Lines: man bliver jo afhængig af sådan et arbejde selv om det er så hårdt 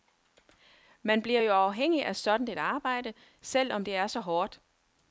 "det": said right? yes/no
yes